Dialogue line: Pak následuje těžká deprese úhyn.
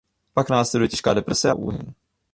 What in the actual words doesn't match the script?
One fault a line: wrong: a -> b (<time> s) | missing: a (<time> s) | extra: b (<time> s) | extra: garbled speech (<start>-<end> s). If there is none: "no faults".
no faults